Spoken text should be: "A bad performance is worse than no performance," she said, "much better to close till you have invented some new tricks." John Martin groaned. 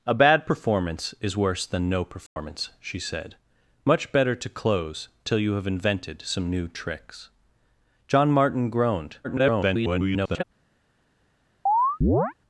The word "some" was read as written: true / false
true